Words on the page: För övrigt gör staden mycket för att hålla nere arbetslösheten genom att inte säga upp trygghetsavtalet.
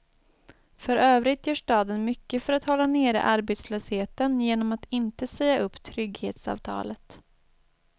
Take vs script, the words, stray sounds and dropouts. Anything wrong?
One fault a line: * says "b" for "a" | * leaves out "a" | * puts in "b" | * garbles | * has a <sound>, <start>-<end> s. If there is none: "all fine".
all fine